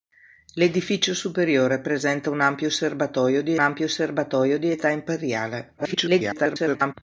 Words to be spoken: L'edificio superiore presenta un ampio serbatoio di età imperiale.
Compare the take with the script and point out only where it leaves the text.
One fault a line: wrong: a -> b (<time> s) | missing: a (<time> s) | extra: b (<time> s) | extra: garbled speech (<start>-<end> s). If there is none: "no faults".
extra: ampio serbatoio di (3.6 s)
extra: garbled speech (5.8-6.9 s)